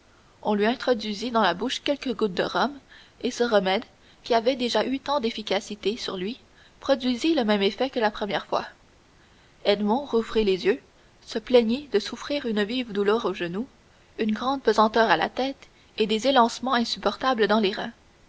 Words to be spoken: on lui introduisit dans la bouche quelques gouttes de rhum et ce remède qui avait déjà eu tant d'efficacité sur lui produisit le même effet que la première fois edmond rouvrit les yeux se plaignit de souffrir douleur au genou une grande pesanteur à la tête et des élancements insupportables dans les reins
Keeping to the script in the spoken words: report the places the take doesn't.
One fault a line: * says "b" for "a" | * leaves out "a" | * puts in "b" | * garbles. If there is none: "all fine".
* puts in "une vive"